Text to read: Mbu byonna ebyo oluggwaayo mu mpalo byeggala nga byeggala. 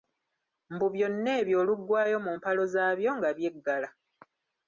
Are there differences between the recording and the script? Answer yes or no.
yes